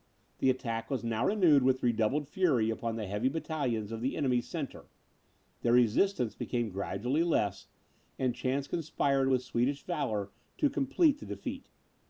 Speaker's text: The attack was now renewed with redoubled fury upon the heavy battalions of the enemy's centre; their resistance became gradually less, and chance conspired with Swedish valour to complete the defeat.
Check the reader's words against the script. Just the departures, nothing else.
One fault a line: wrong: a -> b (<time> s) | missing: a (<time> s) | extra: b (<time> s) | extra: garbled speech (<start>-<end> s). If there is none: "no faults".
no faults